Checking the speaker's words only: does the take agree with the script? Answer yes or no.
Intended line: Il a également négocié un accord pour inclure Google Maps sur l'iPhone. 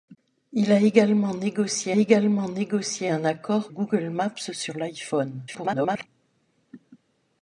no